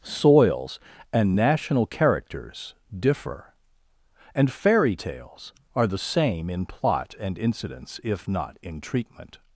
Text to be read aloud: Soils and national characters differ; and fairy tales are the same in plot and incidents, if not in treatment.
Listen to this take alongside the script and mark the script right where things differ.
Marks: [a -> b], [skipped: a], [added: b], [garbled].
Soils and national characters differ; and fairy tales are the same in plot and incidents, if not in treatment.